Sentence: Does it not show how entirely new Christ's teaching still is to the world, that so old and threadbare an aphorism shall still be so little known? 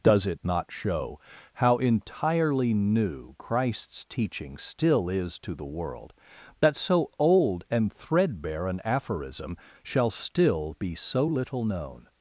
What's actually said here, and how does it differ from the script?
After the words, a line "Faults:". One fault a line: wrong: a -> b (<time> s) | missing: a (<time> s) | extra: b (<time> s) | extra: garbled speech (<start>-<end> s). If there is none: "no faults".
Does it not show how entirely new Christ's teaching still is to the world, that so old and threadbare an aphorism shall still be so little known?
Faults:
no faults